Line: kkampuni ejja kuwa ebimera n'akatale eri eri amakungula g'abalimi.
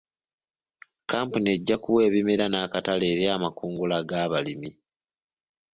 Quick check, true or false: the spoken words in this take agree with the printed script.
false